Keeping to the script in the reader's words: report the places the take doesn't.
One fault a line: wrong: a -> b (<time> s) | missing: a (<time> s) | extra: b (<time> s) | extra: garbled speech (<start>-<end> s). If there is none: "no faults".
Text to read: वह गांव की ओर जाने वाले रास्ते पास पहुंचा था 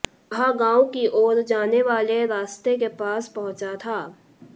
extra: के (2.8 s)